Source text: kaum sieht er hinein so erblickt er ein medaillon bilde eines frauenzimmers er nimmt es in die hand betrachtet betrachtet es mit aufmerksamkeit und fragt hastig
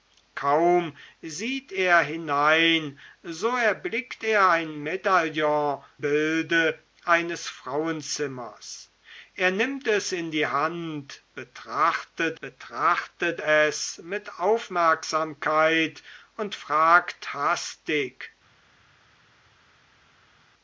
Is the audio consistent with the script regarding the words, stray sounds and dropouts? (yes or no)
yes